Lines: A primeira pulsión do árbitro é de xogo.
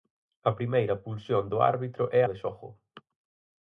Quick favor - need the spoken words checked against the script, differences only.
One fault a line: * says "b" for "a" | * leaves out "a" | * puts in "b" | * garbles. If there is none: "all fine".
all fine